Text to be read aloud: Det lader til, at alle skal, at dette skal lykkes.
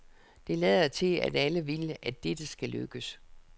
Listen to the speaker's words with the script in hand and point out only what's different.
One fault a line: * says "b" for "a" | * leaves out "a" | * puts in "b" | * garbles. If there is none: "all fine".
* says "vil" for "skal"